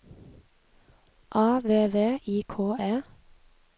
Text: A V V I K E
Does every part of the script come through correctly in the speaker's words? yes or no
yes